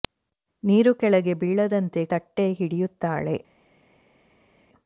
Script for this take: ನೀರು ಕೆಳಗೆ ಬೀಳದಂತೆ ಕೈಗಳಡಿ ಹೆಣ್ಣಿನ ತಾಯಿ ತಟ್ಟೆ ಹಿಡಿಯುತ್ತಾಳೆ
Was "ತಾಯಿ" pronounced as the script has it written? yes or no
no